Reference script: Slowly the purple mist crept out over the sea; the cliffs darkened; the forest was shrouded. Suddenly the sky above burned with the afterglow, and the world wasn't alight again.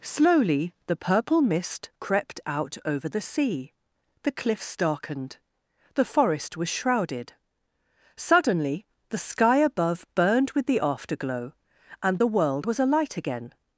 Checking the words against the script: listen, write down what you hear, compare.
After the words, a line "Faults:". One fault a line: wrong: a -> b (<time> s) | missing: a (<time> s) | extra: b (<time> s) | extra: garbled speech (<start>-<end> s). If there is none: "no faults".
Slowly the purple mist crept out over the sea; the cliffs darkened; the forest was shrouded. Suddenly the sky above burned with the afterglow, and the world was alight again.
Faults:
wrong: wasn't -> was (12.6 s)